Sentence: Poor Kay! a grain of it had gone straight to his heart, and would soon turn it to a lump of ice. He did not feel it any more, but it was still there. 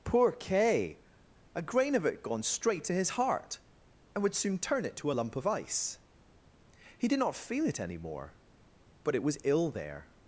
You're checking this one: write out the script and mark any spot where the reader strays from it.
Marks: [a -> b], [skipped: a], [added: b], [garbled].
Poor Kay! a grain of it [skipped: had] gone straight to his heart, and would soon turn it to a lump of ice. He did not feel it any more, but it was [still -> ill] there.